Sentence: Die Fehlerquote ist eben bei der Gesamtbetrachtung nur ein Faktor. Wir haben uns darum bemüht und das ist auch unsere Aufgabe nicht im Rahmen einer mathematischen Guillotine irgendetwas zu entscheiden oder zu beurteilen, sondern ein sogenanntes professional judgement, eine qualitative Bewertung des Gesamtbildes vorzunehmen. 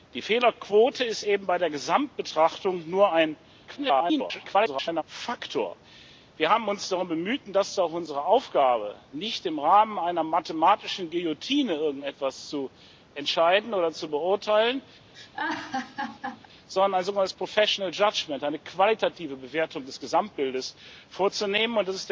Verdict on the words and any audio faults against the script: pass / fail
fail